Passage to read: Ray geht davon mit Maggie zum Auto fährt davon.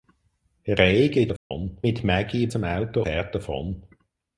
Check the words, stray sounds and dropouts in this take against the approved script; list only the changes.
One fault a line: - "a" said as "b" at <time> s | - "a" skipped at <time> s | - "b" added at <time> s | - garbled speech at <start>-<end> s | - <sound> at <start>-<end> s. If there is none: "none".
- dropout at 1.4-1.5 s